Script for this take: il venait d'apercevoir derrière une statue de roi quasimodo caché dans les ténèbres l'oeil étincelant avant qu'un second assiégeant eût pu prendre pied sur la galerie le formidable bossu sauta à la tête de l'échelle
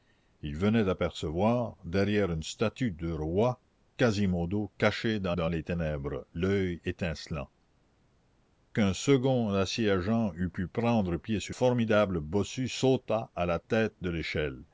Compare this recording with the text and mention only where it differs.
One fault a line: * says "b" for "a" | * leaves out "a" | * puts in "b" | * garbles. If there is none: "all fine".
* puts in "dans"
* leaves out "avant"
* leaves out "la galerie le"